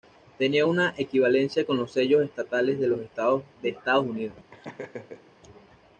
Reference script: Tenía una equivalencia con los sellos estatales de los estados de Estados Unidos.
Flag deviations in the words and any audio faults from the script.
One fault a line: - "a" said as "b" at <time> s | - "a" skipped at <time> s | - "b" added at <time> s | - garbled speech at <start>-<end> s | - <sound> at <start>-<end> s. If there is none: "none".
- laugh at 4.5-5.3 s